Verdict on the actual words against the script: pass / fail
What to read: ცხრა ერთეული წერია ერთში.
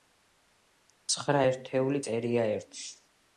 pass